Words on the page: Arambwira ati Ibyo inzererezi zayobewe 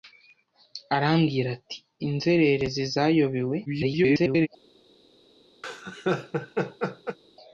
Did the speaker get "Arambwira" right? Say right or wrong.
right